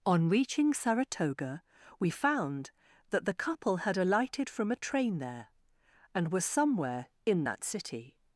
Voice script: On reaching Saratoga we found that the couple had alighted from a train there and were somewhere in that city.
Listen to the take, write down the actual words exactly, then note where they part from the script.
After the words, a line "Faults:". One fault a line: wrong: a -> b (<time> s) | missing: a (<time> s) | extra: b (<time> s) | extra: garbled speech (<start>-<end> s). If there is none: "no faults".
On reaching Saratoga we found that the couple had alighted from a train there and were somewhere in that city.
Faults:
no faults